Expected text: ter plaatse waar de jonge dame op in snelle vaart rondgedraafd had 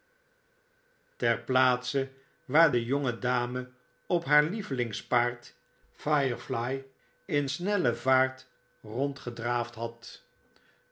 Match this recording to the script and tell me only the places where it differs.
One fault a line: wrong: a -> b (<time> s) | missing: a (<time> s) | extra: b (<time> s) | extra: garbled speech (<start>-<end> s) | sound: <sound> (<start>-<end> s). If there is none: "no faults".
extra: haar lievelingspaard firefly (4.2 s)